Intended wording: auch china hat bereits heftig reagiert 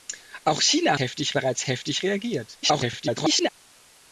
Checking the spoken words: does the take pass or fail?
fail